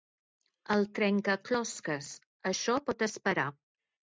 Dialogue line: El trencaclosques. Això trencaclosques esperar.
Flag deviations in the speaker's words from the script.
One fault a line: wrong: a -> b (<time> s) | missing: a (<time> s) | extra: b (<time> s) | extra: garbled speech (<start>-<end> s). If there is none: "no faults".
wrong: trencaclosques -> pot (2.9 s)